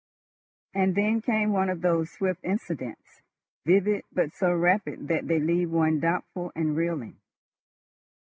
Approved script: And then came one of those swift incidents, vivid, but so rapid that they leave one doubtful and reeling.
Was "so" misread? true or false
false